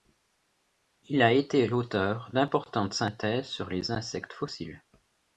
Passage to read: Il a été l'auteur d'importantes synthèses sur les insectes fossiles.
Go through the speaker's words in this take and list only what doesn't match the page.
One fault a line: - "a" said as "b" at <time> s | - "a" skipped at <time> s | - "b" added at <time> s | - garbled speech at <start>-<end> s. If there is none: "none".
none